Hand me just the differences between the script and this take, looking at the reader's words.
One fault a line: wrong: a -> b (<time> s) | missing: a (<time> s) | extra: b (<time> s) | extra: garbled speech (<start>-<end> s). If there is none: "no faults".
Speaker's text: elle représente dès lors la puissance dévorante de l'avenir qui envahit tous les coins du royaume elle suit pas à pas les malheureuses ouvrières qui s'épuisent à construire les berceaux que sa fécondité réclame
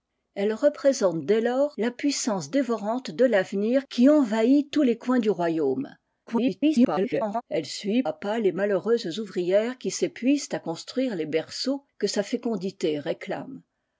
extra: garbled speech (6.3-7.4 s)
missing: pas (8.0 s)